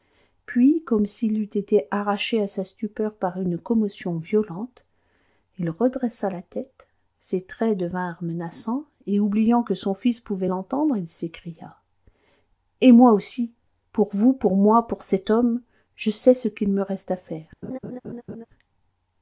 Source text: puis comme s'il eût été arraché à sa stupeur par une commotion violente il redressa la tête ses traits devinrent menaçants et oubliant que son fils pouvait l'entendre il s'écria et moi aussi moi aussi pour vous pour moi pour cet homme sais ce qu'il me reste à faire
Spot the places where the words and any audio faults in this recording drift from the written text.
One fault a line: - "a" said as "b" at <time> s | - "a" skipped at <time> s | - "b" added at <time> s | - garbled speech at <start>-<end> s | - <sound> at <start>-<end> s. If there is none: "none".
- "moi aussi" skipped at 13.5 s
- "je" added at 15.9 s
- laugh at 17.6-18.5 s